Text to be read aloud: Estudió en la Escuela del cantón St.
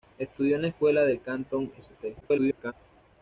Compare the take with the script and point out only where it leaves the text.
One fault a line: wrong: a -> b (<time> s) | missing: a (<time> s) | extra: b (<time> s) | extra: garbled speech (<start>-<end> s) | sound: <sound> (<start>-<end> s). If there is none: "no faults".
extra: garbled speech (2.2-2.7 s)